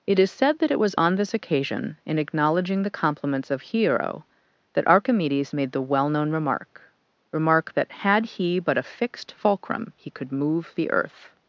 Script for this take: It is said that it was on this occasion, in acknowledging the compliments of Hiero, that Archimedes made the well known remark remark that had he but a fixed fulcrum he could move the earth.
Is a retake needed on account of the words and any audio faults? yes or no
no